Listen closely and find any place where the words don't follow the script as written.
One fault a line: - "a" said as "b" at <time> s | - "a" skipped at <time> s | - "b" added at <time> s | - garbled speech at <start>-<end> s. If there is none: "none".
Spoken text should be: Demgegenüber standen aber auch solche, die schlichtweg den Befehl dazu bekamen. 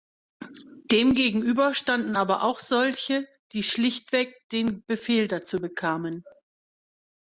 none